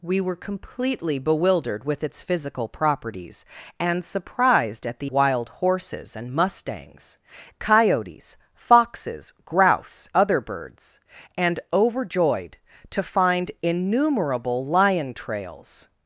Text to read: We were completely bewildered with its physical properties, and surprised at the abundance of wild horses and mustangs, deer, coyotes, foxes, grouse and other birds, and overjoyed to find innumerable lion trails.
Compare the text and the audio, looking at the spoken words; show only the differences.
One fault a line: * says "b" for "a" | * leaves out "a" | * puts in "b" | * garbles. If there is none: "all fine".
* leaves out "abundance of"
* leaves out "deer"
* leaves out "and"